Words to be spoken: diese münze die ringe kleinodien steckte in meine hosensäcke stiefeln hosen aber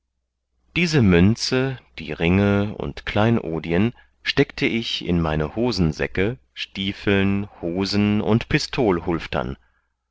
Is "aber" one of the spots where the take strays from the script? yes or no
yes